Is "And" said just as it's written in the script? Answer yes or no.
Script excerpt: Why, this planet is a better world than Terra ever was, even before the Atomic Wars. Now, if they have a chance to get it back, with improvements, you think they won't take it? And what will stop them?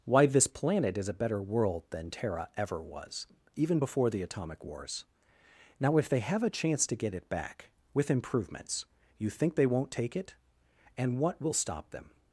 yes